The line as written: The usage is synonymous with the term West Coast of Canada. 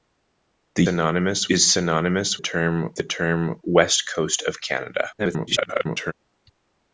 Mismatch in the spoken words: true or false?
true